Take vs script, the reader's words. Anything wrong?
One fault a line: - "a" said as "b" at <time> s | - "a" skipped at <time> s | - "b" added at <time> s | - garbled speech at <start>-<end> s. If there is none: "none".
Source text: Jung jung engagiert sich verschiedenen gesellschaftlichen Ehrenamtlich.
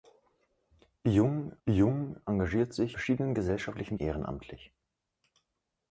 none